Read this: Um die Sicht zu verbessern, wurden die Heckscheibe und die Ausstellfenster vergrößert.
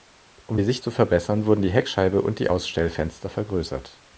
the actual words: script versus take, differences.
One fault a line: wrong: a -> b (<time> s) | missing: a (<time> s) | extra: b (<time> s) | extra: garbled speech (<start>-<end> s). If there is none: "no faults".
no faults